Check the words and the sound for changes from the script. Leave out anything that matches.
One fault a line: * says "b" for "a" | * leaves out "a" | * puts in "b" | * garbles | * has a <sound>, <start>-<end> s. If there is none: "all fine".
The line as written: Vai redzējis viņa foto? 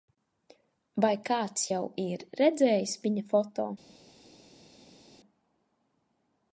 * puts in "kāds jau ir"